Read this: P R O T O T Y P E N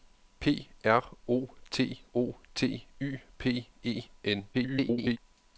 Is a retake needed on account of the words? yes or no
yes